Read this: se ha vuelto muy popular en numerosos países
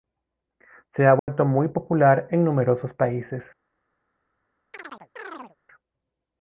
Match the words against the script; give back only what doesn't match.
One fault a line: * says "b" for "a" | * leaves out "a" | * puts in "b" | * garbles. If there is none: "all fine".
all fine